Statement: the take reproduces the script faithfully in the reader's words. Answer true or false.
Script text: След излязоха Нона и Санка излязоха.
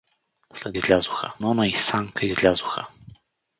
true